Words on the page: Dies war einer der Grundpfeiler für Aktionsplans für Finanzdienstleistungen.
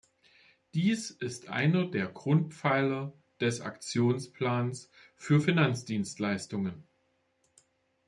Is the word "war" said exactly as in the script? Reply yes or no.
no